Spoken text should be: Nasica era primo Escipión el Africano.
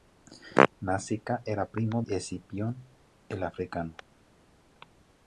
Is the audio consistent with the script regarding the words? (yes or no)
yes